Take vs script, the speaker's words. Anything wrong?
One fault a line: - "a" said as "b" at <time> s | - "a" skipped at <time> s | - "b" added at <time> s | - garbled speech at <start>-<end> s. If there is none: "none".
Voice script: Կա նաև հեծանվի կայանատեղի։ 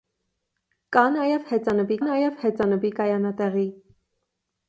- "նաև հեծանվի" added at 2.1 s